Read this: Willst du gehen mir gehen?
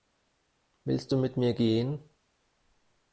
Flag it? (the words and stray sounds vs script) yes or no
yes